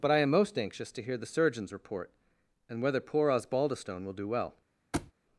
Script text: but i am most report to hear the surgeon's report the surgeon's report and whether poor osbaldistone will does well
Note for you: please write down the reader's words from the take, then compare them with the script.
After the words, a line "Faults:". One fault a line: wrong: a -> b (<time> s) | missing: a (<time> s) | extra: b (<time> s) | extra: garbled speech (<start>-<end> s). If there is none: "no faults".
but i am most anxious to hear the surgeon's report and whether poor osbaldistone will do well
Faults:
wrong: report -> anxious (0.6 s)
missing: the surgeon's report (2.1 s)
wrong: does -> do (4.1 s)